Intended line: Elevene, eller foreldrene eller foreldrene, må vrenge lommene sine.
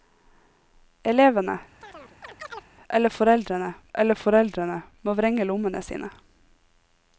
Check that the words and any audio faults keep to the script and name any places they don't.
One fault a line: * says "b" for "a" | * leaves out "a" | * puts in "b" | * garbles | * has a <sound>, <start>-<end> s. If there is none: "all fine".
* has a chirp, 1.8-2.7 s